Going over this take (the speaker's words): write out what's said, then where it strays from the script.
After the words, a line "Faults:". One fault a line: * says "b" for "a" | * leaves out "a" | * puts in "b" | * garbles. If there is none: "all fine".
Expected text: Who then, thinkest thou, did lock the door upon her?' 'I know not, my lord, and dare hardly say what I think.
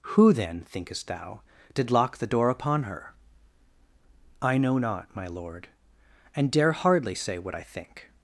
Who then, thinkest thou, did lock the door upon her?' 'I know not, my lord, and dare hardly say what I think.
Faults:
all fine